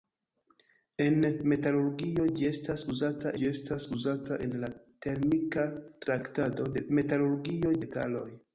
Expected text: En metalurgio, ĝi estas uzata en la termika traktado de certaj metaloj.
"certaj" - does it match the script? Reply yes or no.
no